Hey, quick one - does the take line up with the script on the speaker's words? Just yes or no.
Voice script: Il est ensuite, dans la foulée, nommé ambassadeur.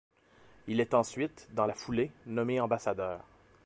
yes